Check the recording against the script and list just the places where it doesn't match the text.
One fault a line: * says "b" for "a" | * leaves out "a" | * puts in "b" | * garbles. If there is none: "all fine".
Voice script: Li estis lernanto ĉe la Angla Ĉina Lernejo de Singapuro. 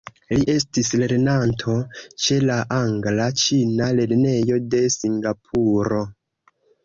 all fine